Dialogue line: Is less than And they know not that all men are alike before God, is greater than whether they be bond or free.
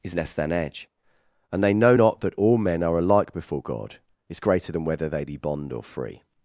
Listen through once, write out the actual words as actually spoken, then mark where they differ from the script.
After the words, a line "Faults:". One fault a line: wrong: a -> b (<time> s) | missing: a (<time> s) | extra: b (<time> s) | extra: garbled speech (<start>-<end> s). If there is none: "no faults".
Is less than edge And they know not that all men are alike before God, is greater than whether they be bond or free.
Faults:
extra: edge (0.5 s)